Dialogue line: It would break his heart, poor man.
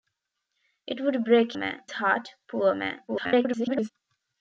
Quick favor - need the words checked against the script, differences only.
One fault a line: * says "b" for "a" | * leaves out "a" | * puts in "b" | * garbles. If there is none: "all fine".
* says "man" for "his"
* garbles